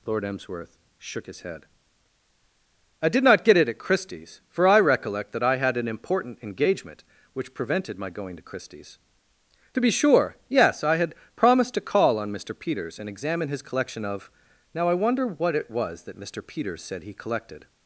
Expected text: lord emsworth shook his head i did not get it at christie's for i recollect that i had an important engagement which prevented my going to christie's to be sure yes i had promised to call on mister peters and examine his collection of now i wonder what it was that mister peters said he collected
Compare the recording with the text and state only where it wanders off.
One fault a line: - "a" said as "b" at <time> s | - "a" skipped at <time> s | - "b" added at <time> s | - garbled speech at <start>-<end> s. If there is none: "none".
none